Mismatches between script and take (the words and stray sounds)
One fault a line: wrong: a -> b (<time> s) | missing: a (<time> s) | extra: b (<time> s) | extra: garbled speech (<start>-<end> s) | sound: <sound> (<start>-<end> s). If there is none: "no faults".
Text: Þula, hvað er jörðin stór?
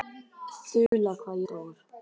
sound: dropout (0.9-0.9 s)
missing: jörðin (1.4 s)